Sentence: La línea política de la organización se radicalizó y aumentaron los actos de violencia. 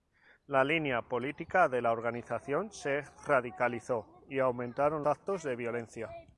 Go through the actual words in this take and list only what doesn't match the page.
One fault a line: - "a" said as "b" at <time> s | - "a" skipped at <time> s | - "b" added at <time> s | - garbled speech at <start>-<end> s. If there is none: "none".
- "los" skipped at 5.0 s